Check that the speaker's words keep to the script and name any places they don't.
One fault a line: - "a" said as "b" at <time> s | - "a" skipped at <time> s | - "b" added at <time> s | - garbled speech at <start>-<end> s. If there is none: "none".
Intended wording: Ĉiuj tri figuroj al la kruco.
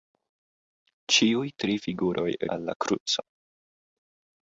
none